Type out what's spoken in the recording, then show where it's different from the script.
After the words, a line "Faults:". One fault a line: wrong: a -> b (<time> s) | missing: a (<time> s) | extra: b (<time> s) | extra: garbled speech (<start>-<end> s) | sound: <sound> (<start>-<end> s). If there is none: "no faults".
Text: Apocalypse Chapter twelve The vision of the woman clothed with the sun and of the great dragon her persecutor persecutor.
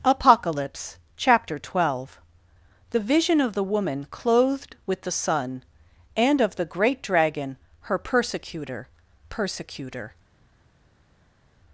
Apocalypse Chapter twelve The vision of the woman clothed with the sun and of the great dragon her persecutor persecutor.
Faults:
no faults